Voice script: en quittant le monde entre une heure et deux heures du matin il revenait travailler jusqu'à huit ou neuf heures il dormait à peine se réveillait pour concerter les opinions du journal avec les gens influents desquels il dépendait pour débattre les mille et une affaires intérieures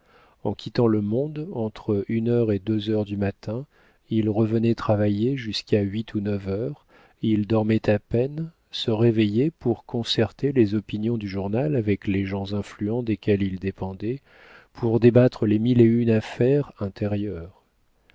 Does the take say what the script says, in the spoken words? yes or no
yes